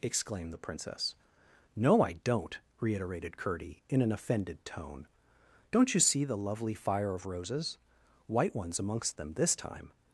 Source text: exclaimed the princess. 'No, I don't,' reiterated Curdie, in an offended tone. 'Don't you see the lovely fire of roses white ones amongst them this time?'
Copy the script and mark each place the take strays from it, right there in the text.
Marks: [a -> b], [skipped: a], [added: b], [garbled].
exclaimed the princess. 'No, I don't,' reiterated Curdie, in an offended tone. 'Don't you see the lovely fire of roses white ones amongst them this time?'